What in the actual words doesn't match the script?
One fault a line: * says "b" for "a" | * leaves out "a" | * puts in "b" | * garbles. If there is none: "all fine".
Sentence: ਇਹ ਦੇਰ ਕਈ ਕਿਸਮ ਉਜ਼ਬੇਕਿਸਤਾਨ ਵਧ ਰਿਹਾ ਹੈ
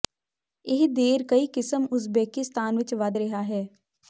* puts in "ਵਿੱਚ"